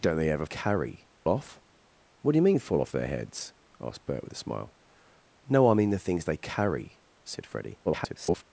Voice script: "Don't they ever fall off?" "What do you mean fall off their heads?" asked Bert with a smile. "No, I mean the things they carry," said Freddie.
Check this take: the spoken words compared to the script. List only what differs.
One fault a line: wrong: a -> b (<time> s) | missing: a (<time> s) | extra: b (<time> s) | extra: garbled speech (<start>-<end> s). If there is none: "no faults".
wrong: fall -> carry (0.4 s)
extra: garbled speech (7.8-8.4 s)